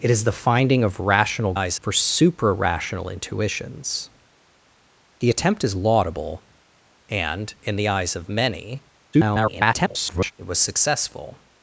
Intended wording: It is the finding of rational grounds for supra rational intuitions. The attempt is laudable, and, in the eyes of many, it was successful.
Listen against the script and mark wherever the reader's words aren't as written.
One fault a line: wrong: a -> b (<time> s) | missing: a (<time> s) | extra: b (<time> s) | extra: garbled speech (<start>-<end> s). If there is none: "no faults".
wrong: grounds -> eyes (1.5 s)
extra: garbled speech (9.1-10.3 s)